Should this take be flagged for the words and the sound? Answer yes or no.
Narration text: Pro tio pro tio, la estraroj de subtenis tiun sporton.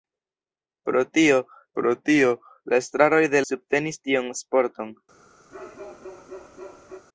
yes